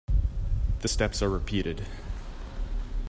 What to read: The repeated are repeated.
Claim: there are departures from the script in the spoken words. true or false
true